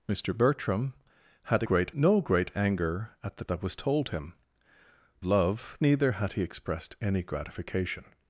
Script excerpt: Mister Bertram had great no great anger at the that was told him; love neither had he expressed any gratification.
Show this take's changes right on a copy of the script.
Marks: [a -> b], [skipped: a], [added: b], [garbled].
Mister Bertram had great no great anger at the that was told him; love neither had he expressed any gratification.